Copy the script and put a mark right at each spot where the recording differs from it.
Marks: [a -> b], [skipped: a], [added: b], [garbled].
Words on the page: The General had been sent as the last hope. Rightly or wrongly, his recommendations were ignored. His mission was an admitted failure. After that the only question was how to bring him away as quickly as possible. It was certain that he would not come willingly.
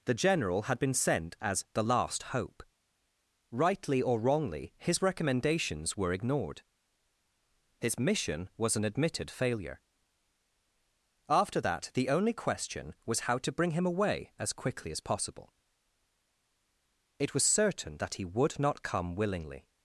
The General had been sent as the last hope. Rightly or wrongly, his recommendations were ignored. His mission was an admitted failure. After that the only question was how to bring him away as quickly as possible. It was certain that he would not come willingly.